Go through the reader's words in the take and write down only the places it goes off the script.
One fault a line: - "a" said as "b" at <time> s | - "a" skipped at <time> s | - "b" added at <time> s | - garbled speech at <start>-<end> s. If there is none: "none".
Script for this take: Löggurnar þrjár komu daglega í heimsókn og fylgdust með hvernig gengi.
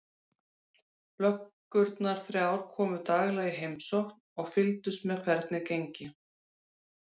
none